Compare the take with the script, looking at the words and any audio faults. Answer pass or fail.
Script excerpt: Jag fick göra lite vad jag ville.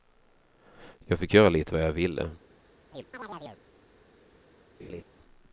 fail